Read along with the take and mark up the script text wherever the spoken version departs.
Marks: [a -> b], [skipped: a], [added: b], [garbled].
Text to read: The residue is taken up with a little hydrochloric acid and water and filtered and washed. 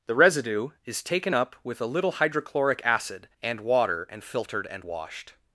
The residue is taken up with a little hydrochloric acid and water and filtered and washed.